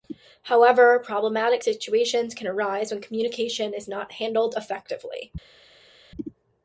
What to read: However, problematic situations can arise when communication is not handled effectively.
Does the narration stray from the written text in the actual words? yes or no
no